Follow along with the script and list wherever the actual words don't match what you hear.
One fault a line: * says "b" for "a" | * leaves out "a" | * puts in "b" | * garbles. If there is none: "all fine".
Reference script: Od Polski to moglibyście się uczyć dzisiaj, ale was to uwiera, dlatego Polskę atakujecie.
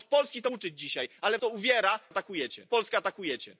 * leaves out "moglibyście się"
* leaves out "was"
* says "atakujecie" for "dlatego"